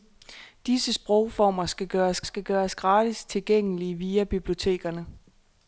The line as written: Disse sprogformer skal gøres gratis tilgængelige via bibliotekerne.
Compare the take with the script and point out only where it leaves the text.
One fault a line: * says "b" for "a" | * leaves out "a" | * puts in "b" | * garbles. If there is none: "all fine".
* puts in "skal gøres"